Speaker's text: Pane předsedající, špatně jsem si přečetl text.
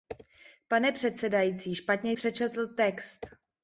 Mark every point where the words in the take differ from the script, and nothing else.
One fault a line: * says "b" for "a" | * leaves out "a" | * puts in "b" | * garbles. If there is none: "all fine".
* leaves out "jsem si"